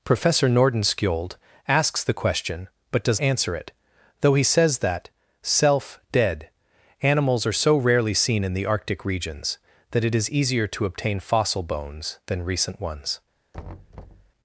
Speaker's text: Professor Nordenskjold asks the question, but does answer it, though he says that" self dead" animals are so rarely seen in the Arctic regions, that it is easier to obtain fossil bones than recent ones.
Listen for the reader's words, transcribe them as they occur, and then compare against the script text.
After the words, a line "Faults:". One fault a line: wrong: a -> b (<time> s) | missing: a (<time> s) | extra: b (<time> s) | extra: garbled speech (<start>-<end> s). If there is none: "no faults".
Professor Nordenskjold asks the question, but does answer it, though he says that" self dead" animals are so rarely seen in the Arctic regions, that it is easier to obtain fossil bones than recent ones.
Faults:
no faults